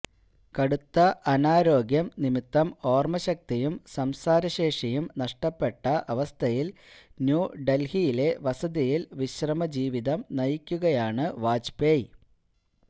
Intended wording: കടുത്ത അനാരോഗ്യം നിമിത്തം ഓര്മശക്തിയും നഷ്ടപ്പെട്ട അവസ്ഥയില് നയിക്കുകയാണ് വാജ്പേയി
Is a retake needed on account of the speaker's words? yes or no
yes